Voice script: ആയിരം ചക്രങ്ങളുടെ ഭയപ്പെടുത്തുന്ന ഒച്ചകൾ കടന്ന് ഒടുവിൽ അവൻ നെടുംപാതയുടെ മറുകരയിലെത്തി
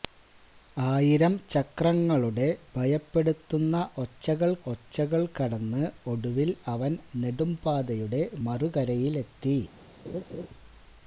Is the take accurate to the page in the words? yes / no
no